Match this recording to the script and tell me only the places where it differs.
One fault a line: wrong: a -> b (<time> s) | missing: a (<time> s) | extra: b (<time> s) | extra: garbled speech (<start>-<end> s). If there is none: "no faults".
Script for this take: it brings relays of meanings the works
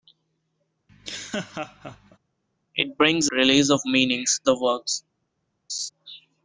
no faults